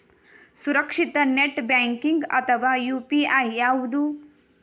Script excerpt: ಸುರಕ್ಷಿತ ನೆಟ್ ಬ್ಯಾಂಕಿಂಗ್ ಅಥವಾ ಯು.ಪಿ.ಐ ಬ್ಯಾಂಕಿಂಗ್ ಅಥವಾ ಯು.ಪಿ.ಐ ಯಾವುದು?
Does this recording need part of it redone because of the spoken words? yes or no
yes